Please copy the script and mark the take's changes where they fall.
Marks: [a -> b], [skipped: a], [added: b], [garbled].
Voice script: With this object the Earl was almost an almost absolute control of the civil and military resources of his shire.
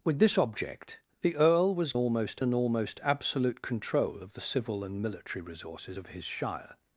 With this object the Earl was almost an almost absolute control of the civil and military resources of his shire.